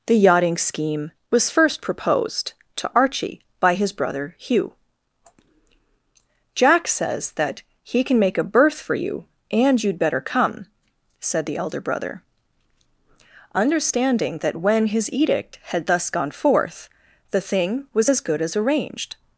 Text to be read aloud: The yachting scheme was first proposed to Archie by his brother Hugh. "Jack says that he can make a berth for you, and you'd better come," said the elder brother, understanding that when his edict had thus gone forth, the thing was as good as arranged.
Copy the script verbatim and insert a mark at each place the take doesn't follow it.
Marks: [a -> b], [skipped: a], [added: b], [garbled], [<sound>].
The yachting scheme was first proposed to Archie by his brother Hugh. "Jack says that he can make a berth for you, and you'd better come," said the elder brother, understanding that when his edict had thus gone forth, the thing was as good as arranged.